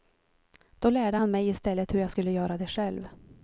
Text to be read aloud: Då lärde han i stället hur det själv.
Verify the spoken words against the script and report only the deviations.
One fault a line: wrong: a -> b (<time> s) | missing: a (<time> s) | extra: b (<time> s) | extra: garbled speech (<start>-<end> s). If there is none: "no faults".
extra: mig (1.3 s)
extra: jag skulle göra (2.0 s)